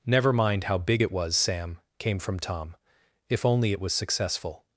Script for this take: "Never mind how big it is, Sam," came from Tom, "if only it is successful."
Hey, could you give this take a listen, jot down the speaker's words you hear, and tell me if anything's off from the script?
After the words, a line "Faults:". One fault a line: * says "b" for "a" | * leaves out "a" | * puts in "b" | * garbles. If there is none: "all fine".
"Never mind how big it was, Sam," came from Tom, "if only it was successful."
Faults:
* says "was" for "is"
* says "was" for "is"